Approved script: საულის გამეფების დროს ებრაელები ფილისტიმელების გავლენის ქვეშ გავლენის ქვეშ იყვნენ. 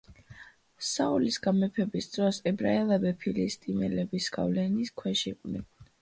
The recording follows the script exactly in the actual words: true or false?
false